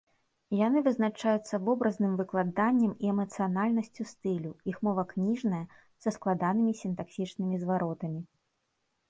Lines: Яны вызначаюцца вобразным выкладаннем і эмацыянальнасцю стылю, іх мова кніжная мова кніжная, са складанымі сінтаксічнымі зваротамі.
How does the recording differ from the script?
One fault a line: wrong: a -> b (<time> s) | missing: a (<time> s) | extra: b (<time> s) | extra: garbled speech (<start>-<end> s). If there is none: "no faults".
missing: мова кніжная (5.6 s)